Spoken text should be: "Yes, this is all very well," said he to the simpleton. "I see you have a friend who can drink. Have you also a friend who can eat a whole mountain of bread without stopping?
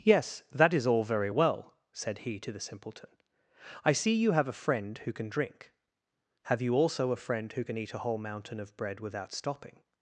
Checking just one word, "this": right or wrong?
wrong